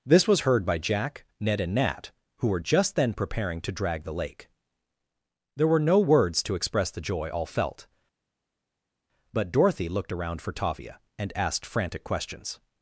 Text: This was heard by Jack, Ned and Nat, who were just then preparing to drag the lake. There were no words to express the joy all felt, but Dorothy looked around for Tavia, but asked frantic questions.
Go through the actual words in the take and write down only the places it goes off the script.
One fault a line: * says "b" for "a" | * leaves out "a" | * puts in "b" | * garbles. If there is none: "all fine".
* says "and" for "but"